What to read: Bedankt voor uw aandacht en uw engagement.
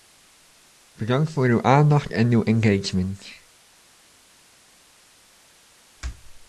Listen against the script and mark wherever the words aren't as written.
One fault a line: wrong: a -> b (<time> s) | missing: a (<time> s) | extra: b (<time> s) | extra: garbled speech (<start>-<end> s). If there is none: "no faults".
no faults